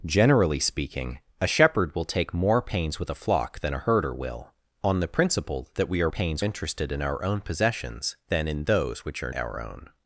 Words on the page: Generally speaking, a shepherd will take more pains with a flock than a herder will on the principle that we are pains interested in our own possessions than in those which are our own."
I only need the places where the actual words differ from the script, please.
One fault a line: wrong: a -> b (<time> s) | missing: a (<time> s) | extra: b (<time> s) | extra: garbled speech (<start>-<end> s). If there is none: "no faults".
no faults